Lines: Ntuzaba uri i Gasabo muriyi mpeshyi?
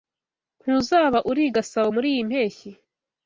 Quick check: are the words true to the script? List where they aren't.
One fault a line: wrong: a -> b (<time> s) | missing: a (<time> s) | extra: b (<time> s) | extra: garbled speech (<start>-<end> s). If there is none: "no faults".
no faults